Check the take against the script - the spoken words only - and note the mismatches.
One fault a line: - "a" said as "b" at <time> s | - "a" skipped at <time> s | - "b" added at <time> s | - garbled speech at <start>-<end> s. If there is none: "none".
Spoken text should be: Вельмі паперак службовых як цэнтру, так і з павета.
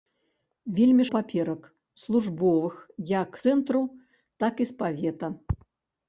none